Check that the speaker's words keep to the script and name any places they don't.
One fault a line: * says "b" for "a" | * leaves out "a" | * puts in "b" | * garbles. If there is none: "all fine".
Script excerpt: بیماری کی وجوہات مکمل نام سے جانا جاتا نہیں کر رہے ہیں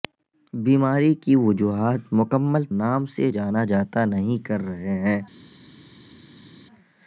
all fine